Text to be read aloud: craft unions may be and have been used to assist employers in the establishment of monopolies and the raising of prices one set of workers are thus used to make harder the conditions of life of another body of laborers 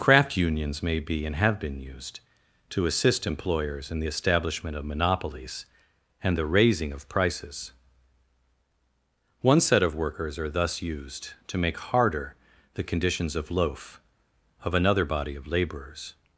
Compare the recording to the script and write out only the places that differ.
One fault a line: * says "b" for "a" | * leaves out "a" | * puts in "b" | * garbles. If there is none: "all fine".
* says "loaf" for "life"